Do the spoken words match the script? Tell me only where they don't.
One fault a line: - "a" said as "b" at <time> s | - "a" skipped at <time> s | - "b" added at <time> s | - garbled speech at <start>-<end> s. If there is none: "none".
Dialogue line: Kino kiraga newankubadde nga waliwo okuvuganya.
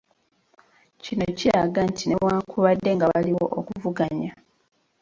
- "nti" added at 1.9 s